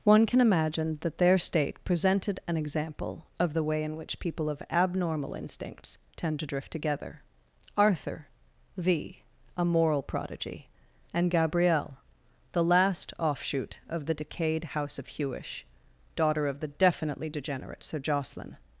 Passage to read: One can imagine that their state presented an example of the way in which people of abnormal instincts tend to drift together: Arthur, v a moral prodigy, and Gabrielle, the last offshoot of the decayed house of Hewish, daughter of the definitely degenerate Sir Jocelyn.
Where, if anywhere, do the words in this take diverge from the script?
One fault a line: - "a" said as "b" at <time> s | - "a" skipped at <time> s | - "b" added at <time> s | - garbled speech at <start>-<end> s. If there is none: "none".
none